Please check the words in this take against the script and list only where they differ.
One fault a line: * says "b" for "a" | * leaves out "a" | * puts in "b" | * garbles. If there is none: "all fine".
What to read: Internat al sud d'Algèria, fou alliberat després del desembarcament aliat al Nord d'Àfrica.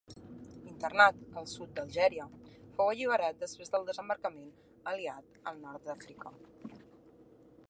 all fine